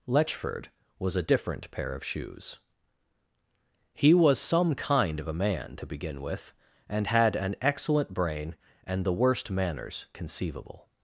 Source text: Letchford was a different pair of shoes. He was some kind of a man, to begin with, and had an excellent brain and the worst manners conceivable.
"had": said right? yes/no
yes